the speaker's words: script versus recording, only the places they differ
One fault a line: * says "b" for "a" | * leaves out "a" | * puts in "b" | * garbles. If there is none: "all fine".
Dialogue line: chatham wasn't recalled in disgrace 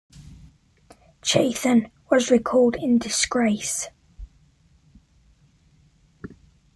* says "was" for "wasn't"